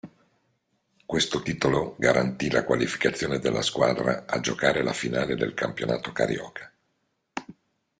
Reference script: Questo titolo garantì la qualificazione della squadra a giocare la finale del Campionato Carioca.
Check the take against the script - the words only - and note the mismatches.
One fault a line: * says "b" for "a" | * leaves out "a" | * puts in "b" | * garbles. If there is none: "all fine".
all fine